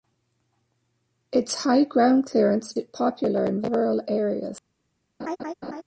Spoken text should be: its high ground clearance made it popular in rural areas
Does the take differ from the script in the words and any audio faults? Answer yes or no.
yes